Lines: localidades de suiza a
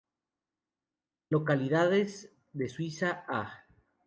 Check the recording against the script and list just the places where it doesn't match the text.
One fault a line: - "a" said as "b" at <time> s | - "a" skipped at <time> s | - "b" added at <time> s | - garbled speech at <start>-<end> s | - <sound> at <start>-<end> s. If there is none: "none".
none